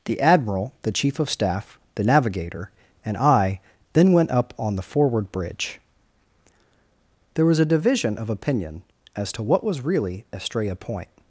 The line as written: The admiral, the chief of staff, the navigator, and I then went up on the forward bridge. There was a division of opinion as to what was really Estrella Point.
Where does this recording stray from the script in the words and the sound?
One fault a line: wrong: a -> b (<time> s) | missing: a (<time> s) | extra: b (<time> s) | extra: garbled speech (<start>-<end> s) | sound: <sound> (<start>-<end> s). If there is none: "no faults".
no faults